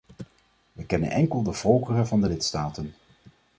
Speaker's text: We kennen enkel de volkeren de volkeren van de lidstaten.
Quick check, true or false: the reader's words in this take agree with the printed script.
false